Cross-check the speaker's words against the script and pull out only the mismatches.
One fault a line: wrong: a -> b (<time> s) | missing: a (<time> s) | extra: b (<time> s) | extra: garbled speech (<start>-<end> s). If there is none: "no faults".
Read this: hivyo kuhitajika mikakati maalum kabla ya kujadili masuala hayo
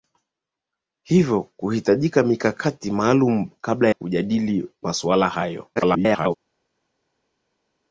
missing: ya (3.9 s)
extra: garbled speech (5.8-6.4 s)